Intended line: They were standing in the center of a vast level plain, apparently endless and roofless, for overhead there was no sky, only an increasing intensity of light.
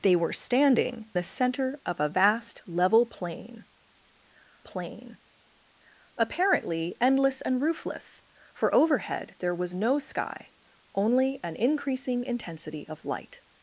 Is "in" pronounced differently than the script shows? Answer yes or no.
yes